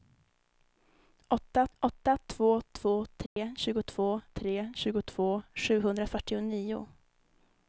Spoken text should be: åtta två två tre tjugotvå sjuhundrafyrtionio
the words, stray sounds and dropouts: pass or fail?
fail